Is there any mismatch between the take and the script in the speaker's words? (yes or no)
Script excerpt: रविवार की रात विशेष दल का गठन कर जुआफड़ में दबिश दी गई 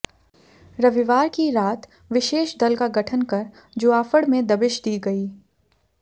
no